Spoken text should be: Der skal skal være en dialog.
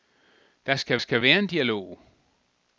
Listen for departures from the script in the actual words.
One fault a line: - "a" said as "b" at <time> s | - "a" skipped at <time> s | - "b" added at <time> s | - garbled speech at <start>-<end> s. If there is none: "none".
none